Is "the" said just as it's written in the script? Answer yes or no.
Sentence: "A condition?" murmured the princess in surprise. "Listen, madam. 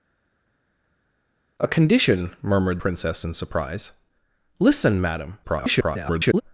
no